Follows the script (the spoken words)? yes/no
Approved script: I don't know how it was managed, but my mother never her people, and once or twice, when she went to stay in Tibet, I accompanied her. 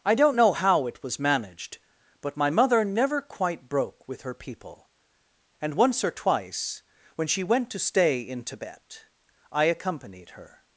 no